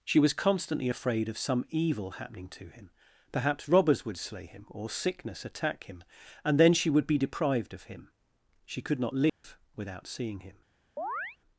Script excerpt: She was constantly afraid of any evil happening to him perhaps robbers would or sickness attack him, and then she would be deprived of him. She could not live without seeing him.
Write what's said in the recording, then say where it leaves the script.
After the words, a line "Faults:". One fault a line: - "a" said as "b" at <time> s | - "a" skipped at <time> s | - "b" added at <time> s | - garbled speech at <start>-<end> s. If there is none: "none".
She was constantly afraid of some evil happening to him perhaps robbers would slay him, or sickness attack him, and then she would be deprived of him. She could not live without seeing him.
Faults:
- "any" said as "some" at 1.4 s
- "slay him" added at 4.2 s